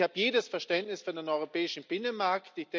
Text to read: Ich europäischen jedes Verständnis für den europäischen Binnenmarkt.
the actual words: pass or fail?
fail